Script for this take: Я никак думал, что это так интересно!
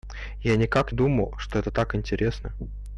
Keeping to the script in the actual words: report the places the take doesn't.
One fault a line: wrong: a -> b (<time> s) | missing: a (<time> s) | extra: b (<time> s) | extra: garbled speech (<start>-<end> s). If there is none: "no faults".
no faults